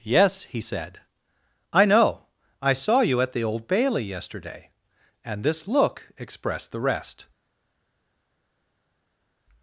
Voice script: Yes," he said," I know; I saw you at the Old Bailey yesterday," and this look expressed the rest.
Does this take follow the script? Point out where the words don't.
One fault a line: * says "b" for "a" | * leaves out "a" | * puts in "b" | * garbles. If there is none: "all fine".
all fine